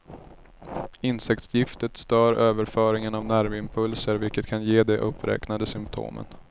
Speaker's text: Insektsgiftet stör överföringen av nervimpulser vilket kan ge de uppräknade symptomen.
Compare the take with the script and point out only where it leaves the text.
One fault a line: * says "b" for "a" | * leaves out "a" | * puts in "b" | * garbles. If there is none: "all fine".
all fine